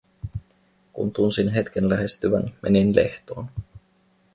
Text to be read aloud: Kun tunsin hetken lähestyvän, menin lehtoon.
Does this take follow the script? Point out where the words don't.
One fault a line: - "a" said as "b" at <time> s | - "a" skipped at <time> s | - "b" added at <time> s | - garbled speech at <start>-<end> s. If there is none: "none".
none